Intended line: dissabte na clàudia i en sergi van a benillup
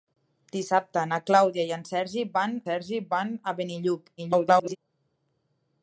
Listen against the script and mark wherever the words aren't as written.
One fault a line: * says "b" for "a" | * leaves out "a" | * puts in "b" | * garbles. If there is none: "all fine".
* puts in "sergi van"
* garbles